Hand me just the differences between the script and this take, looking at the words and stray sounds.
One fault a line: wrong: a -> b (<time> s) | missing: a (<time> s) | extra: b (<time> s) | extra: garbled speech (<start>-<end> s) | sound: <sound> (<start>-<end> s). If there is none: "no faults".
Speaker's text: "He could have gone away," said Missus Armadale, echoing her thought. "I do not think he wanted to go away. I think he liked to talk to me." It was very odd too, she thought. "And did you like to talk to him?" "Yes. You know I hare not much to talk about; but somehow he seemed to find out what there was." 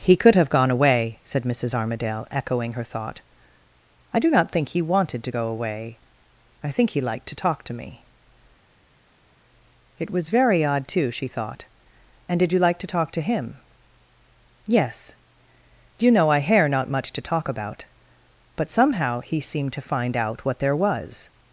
no faults